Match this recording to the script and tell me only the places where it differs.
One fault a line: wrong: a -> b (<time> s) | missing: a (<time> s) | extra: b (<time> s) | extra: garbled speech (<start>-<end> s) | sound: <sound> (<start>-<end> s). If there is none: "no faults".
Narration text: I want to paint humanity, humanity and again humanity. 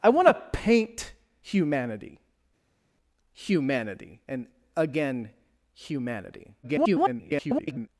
extra: garbled speech (6.6-7.9 s)